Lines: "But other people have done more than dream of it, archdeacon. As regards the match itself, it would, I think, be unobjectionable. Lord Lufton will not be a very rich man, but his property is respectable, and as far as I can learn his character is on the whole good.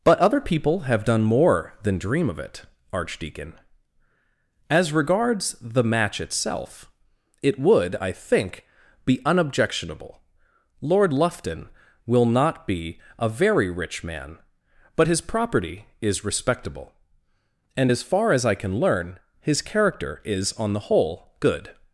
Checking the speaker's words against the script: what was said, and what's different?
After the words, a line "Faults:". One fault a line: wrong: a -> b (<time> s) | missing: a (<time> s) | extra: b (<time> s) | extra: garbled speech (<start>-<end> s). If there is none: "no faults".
"But other people have done more than dream of it, archdeacon. As regards the match itself, it would, I think, be unobjectionable. Lord Lufton will not be a very rich man, but his property is respectable, and as far as I can learn his character is on the whole good.
Faults:
no faults